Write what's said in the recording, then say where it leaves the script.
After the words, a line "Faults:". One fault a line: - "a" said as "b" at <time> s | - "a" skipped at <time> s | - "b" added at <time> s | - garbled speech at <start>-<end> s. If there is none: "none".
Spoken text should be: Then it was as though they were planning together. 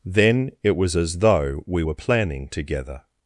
Then it was as though we were planning together.
Faults:
- "they" said as "we" at 1.7 s